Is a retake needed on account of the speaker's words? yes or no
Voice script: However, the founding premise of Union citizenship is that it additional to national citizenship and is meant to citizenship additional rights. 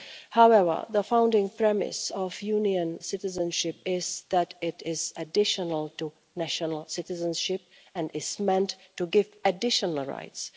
yes